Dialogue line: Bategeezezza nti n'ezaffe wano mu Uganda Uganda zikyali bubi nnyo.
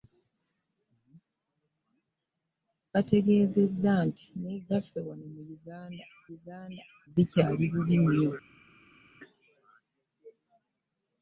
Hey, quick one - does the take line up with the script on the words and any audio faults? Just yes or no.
yes